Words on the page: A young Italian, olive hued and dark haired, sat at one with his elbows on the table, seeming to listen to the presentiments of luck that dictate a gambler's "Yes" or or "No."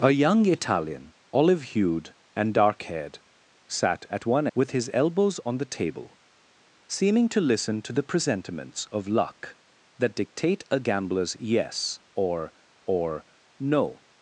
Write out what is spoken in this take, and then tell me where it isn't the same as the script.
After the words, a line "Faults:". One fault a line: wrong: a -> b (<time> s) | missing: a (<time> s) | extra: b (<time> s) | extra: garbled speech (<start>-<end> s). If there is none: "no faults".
A young Italian, olive hued and dark haired, sat at one with his elbows on the table, seeming to listen to the presentiments of luck that dictate a gambler's "Yes" or or "No."
Faults:
no faults